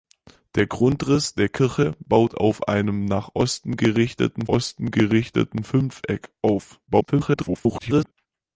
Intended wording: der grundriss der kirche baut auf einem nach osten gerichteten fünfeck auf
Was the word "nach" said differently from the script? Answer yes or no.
no